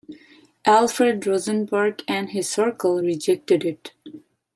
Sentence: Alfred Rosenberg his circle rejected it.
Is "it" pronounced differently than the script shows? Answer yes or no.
no